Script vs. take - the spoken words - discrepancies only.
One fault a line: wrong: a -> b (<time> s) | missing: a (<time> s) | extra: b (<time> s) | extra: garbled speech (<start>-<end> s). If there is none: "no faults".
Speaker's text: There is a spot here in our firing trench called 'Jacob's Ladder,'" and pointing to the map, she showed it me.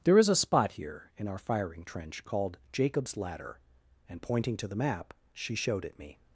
no faults